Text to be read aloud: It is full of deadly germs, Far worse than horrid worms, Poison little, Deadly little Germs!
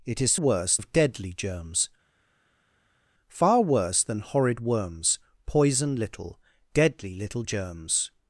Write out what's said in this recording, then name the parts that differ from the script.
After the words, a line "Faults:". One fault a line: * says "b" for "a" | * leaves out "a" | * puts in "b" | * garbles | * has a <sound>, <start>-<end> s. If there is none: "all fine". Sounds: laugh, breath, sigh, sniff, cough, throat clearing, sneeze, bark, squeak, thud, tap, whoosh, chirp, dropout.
It is worse of deadly germs, Far worse than horrid worms, Poison little, Deadly little Germs!
Faults:
* says "worse" for "full"